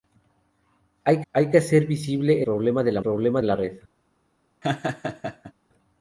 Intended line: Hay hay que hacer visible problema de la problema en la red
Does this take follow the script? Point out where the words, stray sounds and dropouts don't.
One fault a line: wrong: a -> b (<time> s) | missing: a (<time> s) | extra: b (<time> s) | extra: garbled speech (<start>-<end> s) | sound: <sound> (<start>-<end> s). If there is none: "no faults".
sound: laugh (4.6-5.5 s)